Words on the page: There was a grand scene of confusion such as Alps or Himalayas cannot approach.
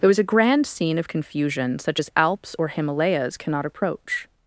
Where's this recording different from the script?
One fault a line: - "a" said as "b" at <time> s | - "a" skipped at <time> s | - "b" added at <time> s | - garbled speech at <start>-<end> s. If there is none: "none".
none